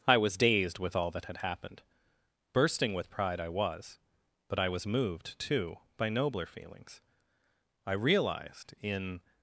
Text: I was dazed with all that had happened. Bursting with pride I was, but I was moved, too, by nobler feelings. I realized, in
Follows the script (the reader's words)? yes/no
yes